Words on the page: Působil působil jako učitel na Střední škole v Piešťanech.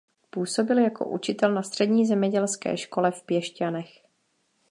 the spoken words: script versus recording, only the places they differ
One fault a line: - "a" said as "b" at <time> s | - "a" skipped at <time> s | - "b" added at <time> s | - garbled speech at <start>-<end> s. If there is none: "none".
- "působil" skipped at 0.8 s
- "zemědělské" added at 2.0 s